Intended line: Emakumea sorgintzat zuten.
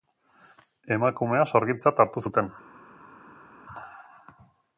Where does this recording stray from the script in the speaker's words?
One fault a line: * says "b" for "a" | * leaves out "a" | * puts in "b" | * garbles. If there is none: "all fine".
* puts in "hartu"